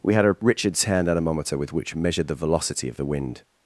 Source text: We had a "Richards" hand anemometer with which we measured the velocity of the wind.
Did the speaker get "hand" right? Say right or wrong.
right